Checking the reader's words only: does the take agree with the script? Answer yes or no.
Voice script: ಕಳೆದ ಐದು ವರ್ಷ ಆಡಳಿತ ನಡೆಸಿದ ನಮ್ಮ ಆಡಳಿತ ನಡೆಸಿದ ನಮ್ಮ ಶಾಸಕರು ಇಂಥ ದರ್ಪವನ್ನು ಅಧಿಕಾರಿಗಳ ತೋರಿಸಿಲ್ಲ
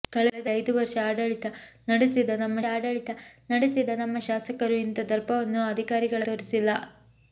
yes